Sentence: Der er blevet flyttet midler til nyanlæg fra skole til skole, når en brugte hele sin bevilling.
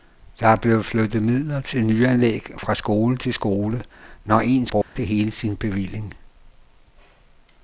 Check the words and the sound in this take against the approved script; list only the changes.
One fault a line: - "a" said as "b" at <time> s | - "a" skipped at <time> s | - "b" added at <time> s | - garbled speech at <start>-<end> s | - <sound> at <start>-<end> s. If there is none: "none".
- dropout at 4.8-5.0 s